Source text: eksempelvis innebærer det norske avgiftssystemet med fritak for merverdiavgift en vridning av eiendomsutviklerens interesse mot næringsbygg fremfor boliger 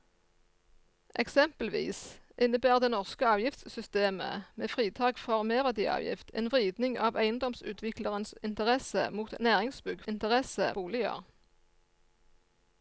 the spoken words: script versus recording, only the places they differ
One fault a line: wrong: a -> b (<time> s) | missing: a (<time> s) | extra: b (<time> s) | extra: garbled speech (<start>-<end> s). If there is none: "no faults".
wrong: fremfor -> interesse (10.1 s)